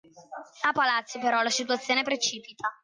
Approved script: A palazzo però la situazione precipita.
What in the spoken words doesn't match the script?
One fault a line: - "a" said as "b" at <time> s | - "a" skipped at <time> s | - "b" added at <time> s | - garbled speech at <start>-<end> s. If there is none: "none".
none